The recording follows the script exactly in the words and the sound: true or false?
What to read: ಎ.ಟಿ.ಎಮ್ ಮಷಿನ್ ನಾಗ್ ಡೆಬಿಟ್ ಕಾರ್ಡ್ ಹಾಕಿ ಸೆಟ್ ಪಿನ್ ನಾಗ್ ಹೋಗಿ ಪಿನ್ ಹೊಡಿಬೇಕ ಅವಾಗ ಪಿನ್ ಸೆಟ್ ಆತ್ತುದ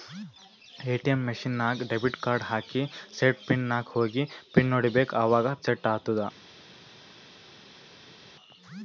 false